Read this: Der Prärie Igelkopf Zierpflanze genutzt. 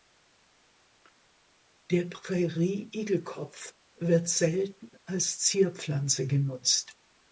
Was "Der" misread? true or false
false